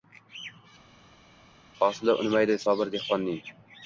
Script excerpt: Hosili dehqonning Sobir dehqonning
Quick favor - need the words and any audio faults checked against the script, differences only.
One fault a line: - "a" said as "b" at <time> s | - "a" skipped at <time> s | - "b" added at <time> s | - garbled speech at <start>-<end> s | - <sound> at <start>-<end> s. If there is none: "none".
- "dehqonning" said as "unmaydi" at 2.2 s